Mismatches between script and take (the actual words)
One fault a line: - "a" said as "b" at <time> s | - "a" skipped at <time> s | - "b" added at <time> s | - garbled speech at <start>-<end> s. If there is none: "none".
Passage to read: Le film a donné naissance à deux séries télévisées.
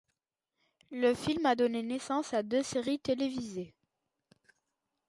none